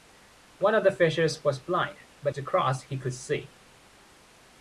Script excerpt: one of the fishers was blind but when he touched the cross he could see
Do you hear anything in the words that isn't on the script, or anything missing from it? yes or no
yes